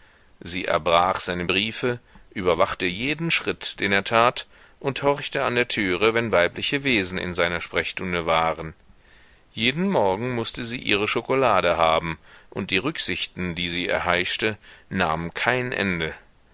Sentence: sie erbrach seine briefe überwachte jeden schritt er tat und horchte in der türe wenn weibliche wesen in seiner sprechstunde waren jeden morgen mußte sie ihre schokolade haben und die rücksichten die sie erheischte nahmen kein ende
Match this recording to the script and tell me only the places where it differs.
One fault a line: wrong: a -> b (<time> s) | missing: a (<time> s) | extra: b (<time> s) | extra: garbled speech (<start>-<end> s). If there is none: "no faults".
extra: den (3.8 s)
wrong: in -> an (5.4 s)